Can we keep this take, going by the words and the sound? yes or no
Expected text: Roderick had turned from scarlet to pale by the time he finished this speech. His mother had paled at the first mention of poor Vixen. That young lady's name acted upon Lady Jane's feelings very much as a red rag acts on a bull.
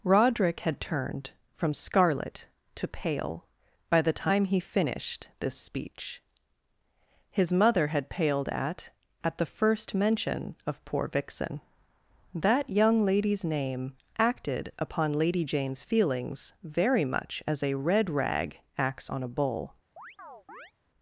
no